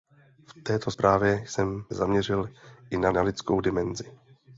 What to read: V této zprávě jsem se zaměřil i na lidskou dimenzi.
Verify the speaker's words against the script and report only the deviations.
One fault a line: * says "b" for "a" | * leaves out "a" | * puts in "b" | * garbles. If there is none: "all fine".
* leaves out "se"
* puts in "na"